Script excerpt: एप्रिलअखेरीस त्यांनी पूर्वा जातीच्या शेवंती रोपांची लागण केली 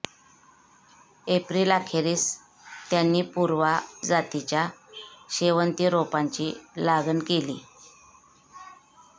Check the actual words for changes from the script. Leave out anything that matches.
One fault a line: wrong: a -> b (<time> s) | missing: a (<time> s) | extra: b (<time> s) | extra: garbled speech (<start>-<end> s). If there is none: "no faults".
no faults